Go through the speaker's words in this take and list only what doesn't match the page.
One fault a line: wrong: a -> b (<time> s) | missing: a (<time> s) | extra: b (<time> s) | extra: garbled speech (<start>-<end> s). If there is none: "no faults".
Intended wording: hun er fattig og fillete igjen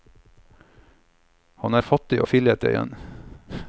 wrong: hun -> han (1.6 s)